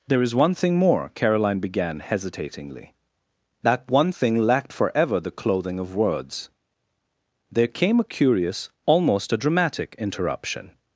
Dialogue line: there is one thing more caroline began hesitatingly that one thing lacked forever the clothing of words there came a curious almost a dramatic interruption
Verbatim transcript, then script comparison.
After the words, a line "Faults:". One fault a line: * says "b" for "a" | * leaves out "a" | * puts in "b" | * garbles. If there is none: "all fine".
there is one thing more caroline began hesitatingly that one thing lacked forever the clothing of words there came a curious almost a dramatic interruption
Faults:
all fine